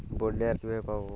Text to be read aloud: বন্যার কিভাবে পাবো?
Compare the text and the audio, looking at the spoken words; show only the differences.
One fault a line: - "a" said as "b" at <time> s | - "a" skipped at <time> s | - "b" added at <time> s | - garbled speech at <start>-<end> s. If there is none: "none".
none